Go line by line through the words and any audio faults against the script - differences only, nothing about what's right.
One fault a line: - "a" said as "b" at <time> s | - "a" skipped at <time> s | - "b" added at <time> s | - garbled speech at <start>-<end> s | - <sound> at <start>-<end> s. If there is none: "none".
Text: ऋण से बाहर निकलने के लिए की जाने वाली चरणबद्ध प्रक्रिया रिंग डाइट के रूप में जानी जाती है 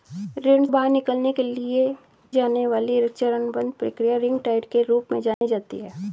- "से" skipped at 0.7 s
- "की" skipped at 1.9 s
- dropout at 5.3-5.4 s